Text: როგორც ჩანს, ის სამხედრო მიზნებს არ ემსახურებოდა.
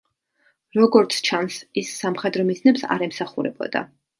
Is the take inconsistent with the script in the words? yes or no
no